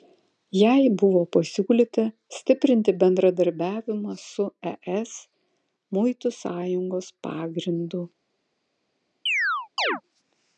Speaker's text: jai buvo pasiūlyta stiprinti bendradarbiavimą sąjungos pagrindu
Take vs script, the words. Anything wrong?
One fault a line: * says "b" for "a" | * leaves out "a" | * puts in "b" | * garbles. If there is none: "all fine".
* puts in "su es muitų"